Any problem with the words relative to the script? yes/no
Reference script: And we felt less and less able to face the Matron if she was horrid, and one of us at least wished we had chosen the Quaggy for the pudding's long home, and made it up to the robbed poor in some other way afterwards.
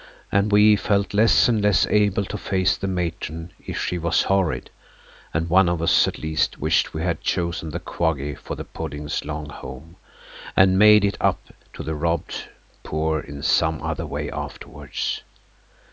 no